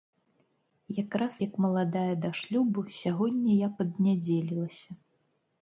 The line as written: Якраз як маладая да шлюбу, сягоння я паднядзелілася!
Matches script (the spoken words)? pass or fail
pass